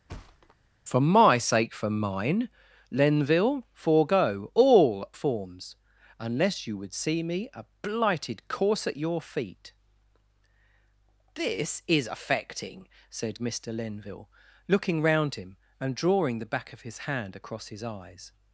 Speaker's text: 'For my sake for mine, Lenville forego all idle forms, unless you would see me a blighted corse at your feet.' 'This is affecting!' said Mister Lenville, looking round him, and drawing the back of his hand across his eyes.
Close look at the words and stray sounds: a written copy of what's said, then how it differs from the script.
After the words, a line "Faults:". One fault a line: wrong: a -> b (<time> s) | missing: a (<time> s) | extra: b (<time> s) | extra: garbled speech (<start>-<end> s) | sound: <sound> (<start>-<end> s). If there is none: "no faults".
'For my sake for mine, Lenville forego all forms, unless you would see me a blighted corse at your feet.' 'This is affecting!' said Mister Lenville, looking round him, and drawing the back of his hand across his eyes.
Faults:
sound: thud (0.1-0.6 s)
missing: idle (5.1 s)